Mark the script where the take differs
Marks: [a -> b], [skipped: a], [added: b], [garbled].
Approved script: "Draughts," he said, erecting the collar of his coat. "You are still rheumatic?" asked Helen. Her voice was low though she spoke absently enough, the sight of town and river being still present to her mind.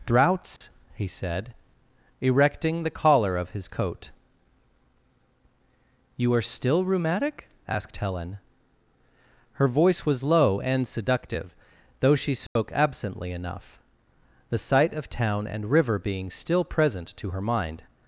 "Draughts," he said, erecting the collar of his coat. "You are still rheumatic?" asked Helen. Her voice was low [added: and seductive] though she spoke absently enough, the sight of town and river being still present to her mind.